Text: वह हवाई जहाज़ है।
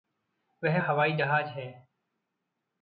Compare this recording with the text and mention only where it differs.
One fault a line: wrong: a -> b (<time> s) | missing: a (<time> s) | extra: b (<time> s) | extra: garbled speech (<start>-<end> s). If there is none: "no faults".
no faults